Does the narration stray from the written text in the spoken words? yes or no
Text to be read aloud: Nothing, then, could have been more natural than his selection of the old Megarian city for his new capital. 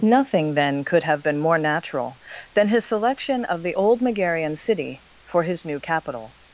no